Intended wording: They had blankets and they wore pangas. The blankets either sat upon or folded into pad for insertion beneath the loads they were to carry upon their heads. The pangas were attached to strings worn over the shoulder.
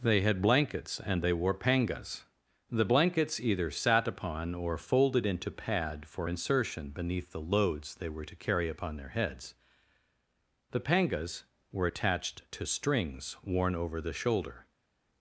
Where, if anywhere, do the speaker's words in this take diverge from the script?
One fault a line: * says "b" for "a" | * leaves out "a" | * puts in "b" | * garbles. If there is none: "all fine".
all fine